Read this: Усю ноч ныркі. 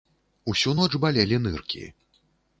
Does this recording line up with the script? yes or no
no